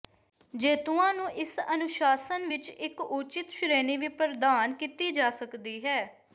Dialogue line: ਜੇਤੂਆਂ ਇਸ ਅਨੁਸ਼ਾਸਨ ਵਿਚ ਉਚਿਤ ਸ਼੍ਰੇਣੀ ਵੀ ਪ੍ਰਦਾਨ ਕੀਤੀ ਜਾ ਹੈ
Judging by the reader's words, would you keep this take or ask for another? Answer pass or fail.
fail